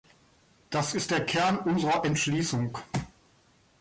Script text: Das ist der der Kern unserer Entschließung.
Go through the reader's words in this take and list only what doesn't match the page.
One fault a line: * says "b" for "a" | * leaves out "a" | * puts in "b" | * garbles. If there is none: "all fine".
* leaves out "der"